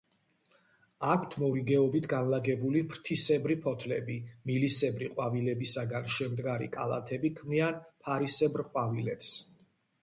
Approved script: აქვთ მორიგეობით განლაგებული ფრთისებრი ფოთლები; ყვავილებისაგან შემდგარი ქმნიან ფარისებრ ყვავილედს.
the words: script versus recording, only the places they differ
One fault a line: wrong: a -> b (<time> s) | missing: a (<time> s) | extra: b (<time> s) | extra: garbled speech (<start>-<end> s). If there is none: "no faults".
extra: მილისებრი (4.5 s)
extra: კალათები (6.8 s)